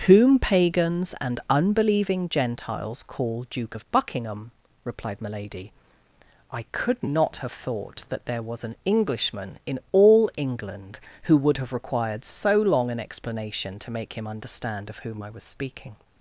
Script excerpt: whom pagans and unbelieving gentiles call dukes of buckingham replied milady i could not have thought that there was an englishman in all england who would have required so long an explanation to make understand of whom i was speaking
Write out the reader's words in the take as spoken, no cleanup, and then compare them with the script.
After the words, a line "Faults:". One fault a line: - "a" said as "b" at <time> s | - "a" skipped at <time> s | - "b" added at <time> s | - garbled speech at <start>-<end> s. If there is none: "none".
whom pagans and unbelieving gentiles call duke of buckingham replied milady i could not have thought that there was an englishman in all england who would have required so long an explanation to make him understand of whom i was speaking
Faults:
- "dukes" said as "duke" at 3.5 s
- "him" added at 14.1 s